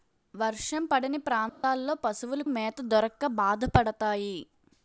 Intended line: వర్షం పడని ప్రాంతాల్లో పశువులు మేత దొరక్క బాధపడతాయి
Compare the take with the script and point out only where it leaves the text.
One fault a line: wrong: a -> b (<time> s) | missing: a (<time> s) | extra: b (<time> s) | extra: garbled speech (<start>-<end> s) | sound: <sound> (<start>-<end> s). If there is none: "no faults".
sound: dropout (1.5-1.6 s)